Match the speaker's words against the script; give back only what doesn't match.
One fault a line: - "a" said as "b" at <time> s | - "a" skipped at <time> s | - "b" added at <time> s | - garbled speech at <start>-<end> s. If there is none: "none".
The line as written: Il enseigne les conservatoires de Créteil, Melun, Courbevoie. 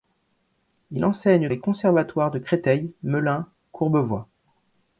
none